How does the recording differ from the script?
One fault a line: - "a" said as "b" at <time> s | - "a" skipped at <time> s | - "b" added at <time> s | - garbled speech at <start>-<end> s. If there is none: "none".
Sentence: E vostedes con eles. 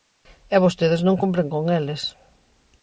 - "non cumpren" added at 1.1 s